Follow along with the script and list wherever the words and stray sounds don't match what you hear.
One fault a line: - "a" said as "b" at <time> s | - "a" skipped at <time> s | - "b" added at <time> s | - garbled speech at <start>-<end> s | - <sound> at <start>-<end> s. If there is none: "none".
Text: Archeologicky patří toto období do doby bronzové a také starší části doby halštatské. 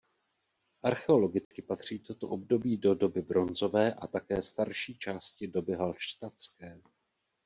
- dropout at 1.4-1.5 s